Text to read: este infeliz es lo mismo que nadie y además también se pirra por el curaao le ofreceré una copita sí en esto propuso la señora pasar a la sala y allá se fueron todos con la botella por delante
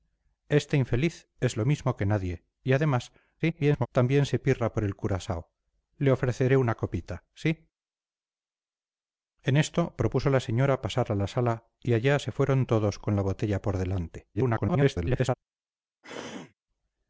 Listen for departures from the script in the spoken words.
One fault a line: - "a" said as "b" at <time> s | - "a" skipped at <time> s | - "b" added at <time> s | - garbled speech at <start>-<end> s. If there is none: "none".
- garbled speech at 3.4-3.9 s
- garbled speech at 14.3-15.3 s